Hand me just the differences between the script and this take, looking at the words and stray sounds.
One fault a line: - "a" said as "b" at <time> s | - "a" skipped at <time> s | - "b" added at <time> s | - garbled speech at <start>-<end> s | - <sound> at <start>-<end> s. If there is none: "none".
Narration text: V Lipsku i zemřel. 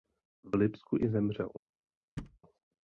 - thud at 2.2-2.4 s